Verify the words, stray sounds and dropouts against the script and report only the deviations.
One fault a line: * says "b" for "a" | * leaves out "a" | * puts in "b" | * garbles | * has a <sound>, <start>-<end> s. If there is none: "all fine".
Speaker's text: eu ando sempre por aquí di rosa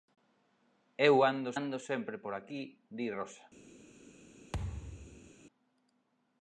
* puts in "ando"
* has a thud, 4.5-5.3 s